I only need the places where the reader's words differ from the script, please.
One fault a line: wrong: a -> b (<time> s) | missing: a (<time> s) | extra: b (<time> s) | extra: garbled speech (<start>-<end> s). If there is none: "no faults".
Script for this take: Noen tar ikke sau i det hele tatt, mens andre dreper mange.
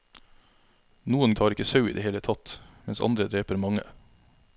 no faults